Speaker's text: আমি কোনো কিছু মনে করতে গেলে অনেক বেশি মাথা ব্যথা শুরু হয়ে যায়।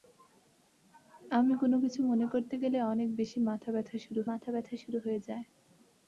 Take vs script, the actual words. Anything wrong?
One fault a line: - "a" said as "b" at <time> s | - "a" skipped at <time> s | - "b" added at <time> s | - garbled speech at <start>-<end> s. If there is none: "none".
- "মাথা ব্যথা শুরু" added at 4.3 s